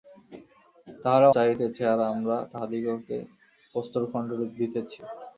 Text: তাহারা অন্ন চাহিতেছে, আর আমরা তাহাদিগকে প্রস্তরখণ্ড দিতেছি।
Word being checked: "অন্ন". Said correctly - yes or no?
no